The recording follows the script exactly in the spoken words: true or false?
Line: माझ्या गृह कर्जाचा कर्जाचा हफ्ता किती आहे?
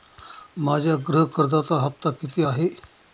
false